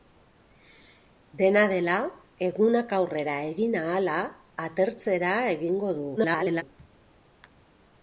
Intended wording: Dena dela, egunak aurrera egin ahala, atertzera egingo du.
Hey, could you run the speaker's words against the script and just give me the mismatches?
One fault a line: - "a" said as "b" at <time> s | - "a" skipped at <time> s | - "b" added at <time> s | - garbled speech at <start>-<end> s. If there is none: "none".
- garbled speech at 6.2-6.6 s